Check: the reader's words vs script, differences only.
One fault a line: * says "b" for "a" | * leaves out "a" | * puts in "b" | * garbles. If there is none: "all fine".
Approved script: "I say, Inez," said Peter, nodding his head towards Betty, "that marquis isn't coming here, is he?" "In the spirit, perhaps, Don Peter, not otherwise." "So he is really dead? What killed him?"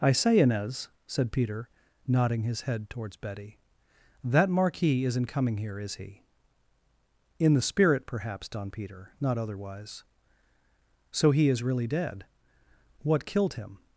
all fine